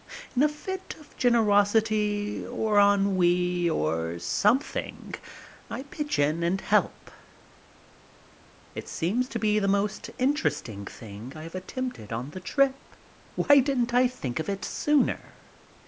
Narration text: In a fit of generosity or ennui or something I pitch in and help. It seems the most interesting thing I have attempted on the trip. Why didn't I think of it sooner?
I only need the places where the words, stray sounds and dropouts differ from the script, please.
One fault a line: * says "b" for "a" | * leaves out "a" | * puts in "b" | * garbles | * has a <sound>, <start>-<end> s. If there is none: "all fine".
* puts in "to be"